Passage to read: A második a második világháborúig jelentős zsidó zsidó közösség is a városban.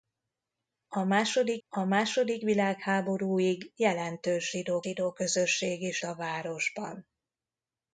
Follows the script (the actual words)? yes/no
yes